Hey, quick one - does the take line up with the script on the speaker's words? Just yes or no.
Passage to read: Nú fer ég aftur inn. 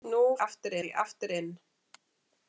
no